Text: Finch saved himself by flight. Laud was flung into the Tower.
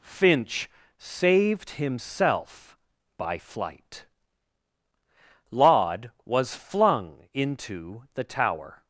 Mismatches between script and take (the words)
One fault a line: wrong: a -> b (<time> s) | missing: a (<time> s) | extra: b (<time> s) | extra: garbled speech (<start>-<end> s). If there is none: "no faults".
no faults